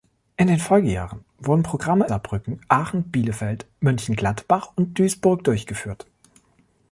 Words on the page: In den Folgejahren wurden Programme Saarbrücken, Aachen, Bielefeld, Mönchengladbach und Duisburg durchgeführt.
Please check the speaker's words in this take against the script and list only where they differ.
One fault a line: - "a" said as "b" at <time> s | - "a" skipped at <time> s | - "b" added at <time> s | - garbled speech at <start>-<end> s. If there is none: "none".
none